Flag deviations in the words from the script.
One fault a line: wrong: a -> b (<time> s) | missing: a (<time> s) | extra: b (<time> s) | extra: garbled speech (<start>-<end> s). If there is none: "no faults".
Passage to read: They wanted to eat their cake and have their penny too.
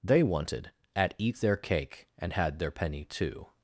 wrong: to -> at (0.9 s)
wrong: have -> had (2.3 s)